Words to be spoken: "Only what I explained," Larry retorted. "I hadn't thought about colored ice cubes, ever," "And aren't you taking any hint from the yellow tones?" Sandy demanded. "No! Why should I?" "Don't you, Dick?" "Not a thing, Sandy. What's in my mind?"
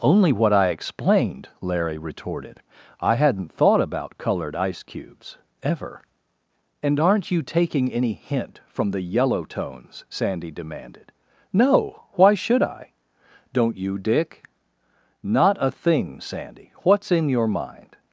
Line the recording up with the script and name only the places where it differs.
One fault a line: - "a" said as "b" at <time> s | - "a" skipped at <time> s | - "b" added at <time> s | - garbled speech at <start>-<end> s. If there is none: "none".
- "my" said as "your" at 17.3 s